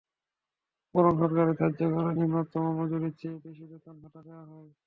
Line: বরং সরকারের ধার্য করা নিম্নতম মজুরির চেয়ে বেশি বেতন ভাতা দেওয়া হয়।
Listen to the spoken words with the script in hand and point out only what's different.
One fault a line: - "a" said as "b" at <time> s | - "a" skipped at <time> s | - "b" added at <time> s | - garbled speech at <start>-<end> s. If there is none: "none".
none